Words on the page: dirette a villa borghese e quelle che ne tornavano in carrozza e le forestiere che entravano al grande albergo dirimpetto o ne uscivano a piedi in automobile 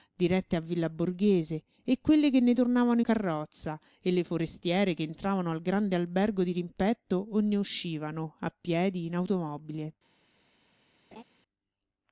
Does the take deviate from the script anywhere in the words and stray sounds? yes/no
yes